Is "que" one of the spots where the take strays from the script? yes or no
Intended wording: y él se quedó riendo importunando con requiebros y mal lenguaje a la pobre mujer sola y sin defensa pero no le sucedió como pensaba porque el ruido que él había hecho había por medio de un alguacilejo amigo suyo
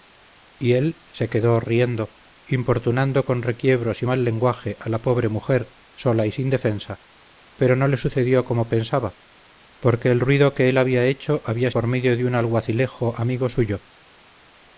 no